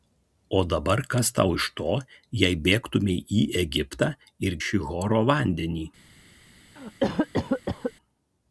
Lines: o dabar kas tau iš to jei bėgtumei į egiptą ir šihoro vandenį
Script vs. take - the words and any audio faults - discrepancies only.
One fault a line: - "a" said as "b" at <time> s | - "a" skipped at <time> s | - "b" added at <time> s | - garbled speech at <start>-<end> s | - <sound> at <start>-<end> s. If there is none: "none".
- cough at 6.8-7.9 s